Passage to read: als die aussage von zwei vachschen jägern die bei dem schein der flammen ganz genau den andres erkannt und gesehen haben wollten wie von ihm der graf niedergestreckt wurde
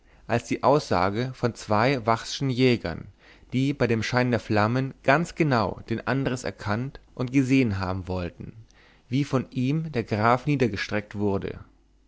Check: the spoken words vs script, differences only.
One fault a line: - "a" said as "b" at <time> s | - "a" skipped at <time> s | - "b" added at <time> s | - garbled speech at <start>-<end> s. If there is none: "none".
none